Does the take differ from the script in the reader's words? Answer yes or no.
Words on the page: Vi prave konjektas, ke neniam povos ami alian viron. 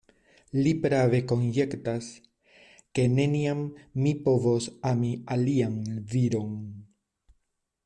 yes